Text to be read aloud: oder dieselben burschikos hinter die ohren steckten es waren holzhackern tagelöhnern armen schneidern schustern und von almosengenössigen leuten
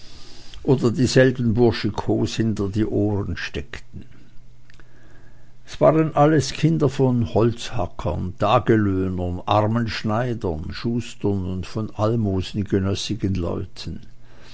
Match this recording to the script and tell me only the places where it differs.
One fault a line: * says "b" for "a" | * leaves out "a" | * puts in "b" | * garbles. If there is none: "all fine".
* puts in "alles kinder von"